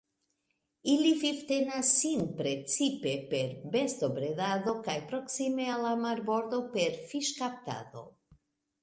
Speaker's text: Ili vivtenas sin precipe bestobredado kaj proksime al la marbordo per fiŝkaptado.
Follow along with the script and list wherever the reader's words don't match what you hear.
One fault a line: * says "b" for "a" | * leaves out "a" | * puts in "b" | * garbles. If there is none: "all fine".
* puts in "per"